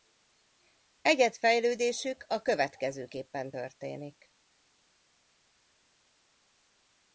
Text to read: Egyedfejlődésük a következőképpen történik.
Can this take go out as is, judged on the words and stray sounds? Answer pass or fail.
pass